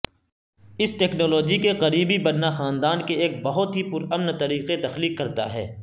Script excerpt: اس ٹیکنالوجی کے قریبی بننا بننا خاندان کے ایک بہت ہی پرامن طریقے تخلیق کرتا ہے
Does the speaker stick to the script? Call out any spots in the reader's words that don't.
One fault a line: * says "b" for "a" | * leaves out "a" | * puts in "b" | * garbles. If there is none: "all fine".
* leaves out "بننا"